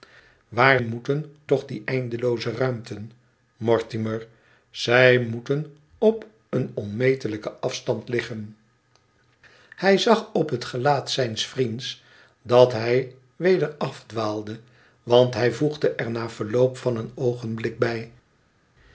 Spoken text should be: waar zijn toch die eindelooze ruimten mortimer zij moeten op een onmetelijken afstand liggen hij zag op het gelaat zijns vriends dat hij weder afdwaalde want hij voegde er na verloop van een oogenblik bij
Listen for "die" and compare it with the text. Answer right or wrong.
right